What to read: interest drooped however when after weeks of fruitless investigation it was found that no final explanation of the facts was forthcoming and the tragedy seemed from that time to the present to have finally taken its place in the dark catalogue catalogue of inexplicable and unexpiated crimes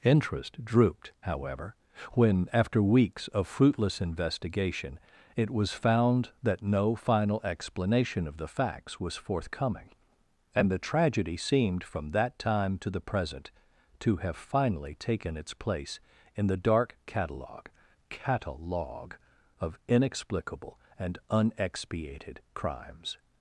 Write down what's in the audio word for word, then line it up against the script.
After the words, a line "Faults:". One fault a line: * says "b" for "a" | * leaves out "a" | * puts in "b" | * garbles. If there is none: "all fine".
interest drooped however when after weeks of fruitless investigation it was found that no final explanation of the facts was forthcoming and the tragedy seemed from that time to the present to have finally taken its place in the dark catalogue catalogue of inexplicable and unexpiated crimes
Faults:
all fine